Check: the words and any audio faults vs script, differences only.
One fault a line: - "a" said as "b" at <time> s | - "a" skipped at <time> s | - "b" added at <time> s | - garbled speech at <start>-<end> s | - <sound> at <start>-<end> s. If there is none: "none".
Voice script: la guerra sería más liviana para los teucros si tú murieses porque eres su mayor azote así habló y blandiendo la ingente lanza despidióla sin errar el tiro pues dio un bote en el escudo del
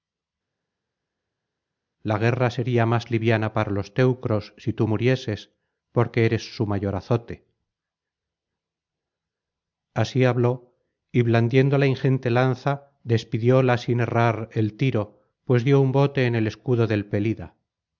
none